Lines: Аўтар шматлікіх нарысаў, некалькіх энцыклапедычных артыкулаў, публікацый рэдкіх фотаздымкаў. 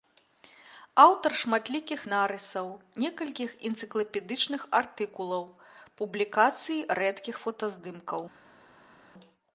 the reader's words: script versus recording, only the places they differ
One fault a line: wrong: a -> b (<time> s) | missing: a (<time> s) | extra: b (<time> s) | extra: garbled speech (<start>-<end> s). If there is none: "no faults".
no faults